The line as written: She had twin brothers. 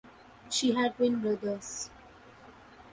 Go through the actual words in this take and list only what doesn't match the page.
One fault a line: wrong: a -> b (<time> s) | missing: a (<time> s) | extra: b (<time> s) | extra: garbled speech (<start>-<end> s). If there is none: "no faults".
no faults